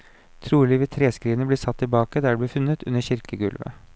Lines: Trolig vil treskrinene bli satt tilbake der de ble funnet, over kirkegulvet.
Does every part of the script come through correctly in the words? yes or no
no